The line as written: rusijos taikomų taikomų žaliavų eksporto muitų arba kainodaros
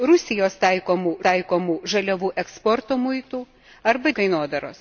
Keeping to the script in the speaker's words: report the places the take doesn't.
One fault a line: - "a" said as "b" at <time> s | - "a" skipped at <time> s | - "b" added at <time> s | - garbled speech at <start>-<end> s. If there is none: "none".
none